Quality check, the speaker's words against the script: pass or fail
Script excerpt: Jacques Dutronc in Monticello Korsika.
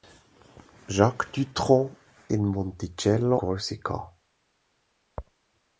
pass